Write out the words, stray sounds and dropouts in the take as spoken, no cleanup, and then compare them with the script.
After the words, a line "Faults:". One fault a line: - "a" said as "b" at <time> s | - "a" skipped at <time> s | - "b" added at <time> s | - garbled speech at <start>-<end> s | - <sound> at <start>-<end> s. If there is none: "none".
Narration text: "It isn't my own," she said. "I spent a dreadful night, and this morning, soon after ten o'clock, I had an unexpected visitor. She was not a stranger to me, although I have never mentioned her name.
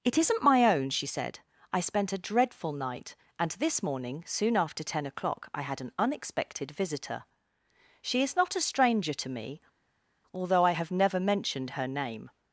"It isn't my own," she said. "I spent a dreadful night, and this morning, soon after ten o'clock, I had an unexpected visitor. She is not a stranger to me, although I have never mentioned her name.
Faults:
- "was" said as "is" at 8.2 s